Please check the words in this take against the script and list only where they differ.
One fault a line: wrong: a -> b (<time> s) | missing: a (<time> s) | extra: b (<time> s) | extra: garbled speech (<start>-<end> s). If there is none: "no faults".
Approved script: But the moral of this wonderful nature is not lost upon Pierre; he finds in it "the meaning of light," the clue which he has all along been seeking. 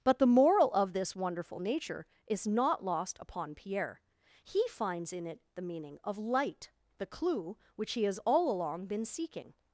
no faults